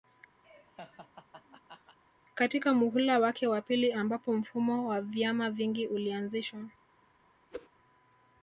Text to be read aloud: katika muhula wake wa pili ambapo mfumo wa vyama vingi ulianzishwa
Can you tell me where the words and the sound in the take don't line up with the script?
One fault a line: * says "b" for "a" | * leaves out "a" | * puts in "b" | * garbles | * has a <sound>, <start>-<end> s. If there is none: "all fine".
* has a laugh, 0.4-2.0 s
* has a whoosh, 7.5-7.7 s